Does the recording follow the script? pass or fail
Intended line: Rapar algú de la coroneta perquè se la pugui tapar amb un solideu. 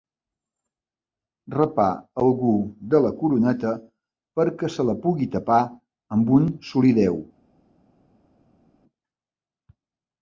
pass